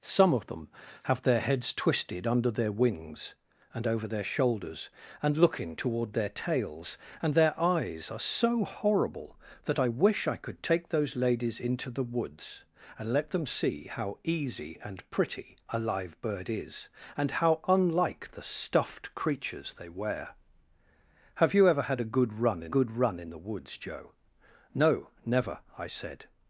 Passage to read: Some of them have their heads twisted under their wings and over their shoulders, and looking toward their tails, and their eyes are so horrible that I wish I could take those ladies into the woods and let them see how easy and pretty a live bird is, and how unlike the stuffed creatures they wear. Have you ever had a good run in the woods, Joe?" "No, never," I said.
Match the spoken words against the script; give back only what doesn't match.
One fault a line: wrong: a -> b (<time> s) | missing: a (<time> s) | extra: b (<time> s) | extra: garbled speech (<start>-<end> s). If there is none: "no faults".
extra: good run in (22.7 s)